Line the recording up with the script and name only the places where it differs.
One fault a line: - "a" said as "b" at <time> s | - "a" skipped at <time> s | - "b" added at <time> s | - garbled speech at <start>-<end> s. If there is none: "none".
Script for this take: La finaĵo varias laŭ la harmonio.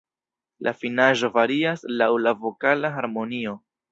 - "vokala" added at 2.4 s